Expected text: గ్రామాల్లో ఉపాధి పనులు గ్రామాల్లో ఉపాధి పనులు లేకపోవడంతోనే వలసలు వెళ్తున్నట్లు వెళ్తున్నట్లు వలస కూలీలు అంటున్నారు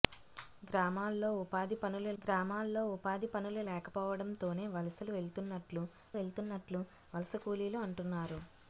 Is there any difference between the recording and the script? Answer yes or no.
no